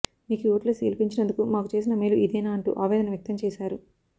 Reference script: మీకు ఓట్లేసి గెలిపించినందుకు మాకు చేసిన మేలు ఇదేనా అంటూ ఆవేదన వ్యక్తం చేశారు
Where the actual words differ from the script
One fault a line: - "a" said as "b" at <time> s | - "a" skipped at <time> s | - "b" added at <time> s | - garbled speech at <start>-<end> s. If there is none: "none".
none